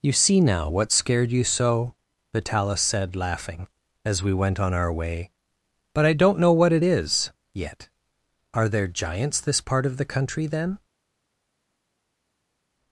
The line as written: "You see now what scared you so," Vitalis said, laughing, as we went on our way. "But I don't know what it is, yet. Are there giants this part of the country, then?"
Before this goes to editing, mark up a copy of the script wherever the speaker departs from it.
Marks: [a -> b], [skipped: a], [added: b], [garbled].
"You see now what scared you so," Vitalis said, laughing, as we went on our way. "But I don't know what it is, yet. Are there giants this part of the country, then?"